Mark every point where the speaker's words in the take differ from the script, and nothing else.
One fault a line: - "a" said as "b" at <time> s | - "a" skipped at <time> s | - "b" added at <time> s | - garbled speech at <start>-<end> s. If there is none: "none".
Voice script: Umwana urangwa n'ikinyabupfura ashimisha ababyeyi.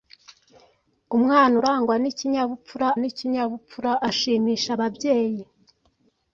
- "n'ikinyabupfura" added at 3.0 s